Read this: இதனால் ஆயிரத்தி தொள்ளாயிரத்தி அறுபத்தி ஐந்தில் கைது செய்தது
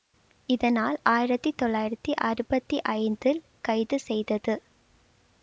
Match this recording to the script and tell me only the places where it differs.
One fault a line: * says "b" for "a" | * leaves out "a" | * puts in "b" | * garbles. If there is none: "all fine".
all fine